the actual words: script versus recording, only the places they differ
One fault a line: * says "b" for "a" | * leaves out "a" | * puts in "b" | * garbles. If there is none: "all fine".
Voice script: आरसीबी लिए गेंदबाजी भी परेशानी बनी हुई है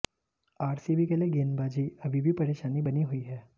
* puts in "के"
* puts in "अभी"